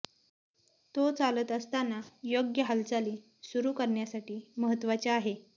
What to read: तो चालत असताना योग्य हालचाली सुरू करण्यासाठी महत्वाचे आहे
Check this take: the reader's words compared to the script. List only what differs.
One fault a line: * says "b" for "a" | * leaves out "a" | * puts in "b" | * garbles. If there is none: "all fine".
all fine